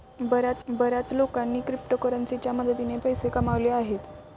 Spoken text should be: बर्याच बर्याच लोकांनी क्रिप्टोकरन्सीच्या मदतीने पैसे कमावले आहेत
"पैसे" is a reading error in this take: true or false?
false